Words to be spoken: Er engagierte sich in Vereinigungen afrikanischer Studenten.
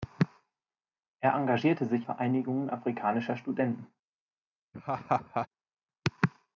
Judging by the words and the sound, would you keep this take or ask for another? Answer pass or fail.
fail